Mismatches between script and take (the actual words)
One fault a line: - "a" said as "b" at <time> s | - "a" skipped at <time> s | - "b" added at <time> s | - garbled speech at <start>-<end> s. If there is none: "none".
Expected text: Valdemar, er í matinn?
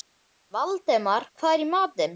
- "hvað" added at 1.4 s